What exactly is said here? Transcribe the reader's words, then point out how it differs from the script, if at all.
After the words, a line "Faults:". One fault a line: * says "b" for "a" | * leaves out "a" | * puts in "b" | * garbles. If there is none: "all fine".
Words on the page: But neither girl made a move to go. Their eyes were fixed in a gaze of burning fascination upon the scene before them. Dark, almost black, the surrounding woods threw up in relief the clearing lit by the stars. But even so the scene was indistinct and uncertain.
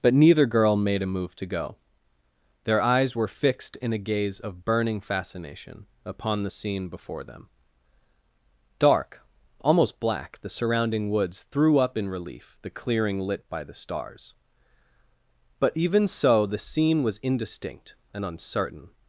But neither girl made a move to go. Their eyes were fixed in a gaze of burning fascination upon the scene before them. Dark, almost black, the surrounding woods threw up in relief the clearing lit by the stars. But even so the scene was indistinct and uncertain.
Faults:
all fine